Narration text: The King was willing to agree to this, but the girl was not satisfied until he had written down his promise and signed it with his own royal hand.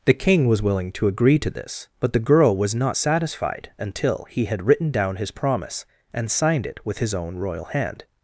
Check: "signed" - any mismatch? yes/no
no